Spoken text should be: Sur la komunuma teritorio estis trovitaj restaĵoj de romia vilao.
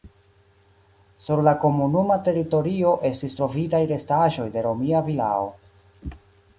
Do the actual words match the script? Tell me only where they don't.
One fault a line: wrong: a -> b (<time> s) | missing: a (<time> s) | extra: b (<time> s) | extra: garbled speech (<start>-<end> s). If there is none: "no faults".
no faults